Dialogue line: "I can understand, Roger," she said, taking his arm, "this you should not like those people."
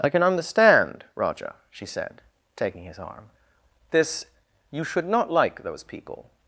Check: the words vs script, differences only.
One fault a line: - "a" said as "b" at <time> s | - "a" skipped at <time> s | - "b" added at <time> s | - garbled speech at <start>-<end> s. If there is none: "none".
none